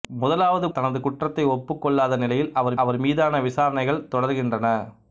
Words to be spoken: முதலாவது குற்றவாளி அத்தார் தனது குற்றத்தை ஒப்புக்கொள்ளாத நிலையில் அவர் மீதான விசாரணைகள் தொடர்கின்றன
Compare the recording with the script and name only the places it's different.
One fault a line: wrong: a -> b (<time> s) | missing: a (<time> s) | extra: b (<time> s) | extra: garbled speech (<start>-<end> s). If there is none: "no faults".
missing: குற்றவாளி அத்தார் (0.7 s)
extra: அவர் (2.8 s)